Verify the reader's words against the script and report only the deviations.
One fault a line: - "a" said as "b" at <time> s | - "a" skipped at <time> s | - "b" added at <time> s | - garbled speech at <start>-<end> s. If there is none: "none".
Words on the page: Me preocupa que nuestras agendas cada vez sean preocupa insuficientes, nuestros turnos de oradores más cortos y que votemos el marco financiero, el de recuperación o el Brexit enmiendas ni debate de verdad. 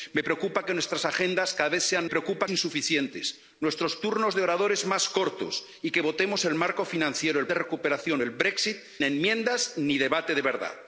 none